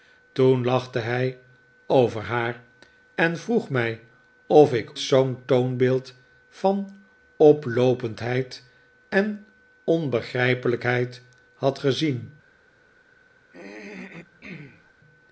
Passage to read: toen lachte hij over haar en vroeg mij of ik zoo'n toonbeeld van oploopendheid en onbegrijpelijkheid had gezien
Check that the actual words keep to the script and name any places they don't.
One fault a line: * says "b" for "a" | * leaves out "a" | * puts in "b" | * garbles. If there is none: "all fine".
all fine